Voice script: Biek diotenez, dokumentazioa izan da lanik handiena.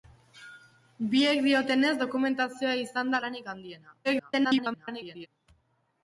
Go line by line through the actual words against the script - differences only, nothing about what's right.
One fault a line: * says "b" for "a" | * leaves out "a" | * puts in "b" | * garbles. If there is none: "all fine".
* garbles